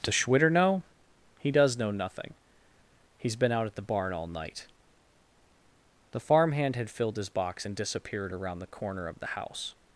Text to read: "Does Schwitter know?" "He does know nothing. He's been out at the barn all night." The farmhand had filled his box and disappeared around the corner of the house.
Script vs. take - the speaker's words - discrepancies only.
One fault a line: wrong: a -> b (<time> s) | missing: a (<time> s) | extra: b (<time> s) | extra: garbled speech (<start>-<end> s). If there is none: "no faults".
no faults